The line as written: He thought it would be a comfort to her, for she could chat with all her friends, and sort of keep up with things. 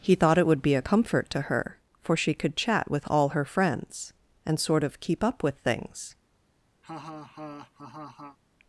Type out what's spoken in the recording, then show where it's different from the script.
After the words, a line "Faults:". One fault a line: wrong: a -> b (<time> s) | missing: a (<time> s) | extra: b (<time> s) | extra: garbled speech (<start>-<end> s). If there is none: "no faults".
He thought it would be a comfort to her, for she could chat with all her friends, and sort of keep up with things.
Faults:
no faults